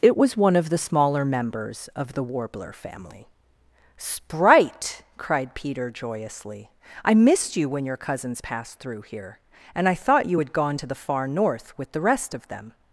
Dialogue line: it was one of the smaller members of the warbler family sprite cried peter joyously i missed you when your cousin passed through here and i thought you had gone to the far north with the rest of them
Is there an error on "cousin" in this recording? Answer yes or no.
yes